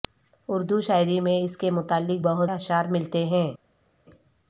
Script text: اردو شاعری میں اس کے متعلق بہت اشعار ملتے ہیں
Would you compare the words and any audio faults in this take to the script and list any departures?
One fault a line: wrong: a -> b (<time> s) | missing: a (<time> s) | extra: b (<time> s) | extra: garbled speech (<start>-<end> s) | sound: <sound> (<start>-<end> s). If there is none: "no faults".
no faults